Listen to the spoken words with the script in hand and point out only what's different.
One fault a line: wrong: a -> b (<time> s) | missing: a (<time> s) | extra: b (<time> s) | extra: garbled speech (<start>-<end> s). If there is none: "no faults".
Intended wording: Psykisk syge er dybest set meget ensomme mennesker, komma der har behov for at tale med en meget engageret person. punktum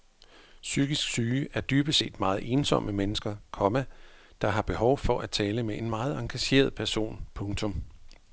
no faults